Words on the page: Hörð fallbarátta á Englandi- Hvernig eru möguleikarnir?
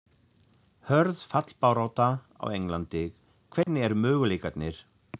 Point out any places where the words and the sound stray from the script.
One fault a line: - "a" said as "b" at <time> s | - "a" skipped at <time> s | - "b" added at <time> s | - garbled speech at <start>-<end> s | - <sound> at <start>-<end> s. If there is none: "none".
- dropout at 3.6-3.7 s